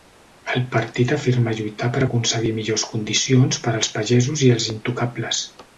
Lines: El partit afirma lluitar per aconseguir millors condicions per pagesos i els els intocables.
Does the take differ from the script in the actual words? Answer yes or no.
yes